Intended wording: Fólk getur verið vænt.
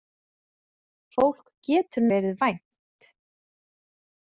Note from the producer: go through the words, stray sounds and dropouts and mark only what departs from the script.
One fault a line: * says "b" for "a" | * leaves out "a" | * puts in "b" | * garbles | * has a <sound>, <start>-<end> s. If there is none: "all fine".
all fine